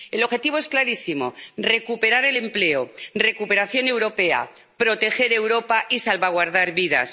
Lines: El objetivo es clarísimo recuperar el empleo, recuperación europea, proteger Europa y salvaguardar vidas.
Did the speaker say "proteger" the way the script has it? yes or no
yes